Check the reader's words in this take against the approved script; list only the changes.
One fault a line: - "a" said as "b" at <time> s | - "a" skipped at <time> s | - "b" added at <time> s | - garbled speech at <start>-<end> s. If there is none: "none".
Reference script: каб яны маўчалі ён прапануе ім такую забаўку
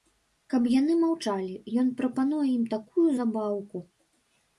none